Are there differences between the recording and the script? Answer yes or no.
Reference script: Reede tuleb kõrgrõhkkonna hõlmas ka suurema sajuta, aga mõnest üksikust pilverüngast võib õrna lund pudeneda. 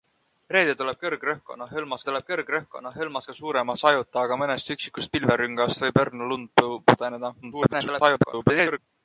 yes